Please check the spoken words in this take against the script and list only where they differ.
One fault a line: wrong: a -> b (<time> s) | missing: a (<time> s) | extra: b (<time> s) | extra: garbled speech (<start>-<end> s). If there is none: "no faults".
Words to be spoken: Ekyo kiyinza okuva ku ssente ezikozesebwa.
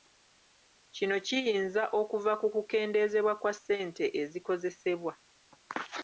wrong: Ekyo -> Kino (0.9 s)
extra: kukendeezebwa kwa (2.5 s)